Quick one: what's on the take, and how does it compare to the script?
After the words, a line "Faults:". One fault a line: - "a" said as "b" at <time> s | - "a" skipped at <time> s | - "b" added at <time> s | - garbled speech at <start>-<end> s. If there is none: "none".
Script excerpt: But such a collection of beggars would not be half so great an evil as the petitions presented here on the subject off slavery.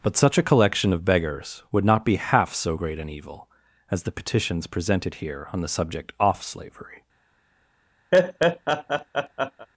But such a collection of beggars would not be half so great an evil as the petitions presented here on the subject off slavery.
Faults:
none